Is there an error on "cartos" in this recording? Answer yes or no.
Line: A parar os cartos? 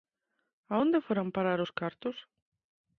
no